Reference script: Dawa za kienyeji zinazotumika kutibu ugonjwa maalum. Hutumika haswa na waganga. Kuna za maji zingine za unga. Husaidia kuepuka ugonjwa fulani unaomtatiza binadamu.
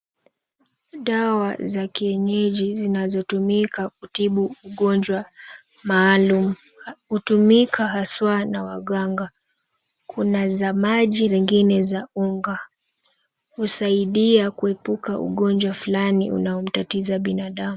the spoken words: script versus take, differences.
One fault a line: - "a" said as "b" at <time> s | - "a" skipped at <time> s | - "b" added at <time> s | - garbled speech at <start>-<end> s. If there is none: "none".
none